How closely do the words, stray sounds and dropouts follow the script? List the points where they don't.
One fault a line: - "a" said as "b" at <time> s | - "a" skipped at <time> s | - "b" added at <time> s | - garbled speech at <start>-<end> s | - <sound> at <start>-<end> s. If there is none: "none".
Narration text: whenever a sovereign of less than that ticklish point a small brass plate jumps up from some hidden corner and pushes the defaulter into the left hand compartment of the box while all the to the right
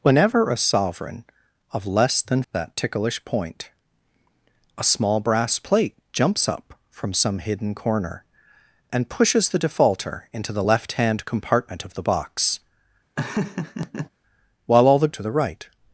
- laugh at 13.2-14.1 s